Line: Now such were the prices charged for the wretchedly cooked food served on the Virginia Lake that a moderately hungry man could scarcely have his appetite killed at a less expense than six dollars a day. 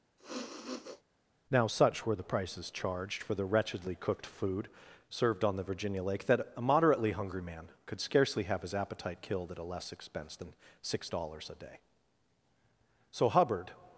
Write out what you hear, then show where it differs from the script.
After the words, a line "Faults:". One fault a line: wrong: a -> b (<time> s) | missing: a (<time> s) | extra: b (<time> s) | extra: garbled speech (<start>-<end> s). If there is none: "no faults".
Now such were the prices charged for the wretchedly cooked food served on the Virginia Lake that a moderately hungry man could scarcely have his appetite killed at a less expense than six dollars a day. So Hubbard
Faults:
extra: So Hubbard (13.1 s)